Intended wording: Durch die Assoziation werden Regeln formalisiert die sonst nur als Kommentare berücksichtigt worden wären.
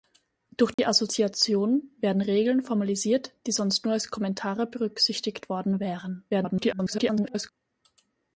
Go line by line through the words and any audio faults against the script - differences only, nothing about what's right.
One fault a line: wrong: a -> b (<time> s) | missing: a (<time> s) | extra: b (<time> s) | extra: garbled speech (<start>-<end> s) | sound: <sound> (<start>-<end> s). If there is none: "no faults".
sound: dropout (0.7-0.8 s)
extra: garbled speech (6.3-7.5 s)